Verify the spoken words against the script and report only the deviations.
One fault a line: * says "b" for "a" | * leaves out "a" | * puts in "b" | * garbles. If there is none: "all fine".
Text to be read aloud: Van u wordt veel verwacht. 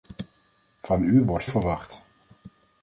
* leaves out "veel"